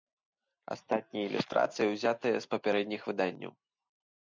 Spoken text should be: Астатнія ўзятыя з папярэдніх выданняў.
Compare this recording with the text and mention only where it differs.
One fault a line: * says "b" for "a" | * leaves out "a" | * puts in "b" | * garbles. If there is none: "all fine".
* puts in "ілюстрацыі"